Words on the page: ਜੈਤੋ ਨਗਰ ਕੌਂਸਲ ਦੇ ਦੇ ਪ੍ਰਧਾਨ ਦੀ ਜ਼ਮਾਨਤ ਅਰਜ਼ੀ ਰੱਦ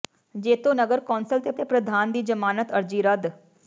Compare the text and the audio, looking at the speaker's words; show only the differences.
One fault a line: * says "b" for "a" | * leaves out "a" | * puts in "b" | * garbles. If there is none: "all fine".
all fine